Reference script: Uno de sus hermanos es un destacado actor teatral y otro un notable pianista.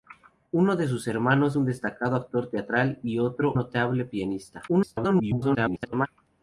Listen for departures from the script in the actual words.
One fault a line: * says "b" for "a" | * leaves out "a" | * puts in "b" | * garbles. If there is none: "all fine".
* leaves out "es"
* leaves out "un"
* garbles